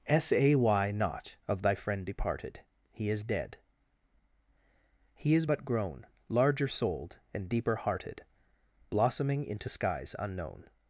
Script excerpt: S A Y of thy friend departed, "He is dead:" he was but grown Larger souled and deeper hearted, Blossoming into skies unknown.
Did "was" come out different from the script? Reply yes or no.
yes